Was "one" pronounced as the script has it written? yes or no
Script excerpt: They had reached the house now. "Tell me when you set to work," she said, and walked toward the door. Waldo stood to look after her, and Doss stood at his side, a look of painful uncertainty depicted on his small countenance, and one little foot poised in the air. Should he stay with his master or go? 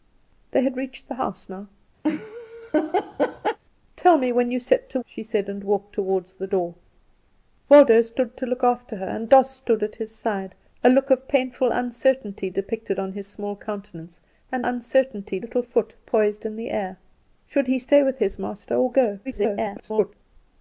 no